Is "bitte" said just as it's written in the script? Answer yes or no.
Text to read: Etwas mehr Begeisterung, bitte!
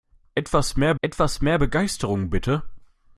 yes